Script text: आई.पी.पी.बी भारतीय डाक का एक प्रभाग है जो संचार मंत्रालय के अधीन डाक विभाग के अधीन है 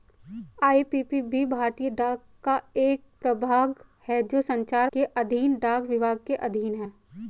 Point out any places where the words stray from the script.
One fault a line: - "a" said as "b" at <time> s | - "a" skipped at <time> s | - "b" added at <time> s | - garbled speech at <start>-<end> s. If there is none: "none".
- "मंत्रालय" skipped at 4.9 s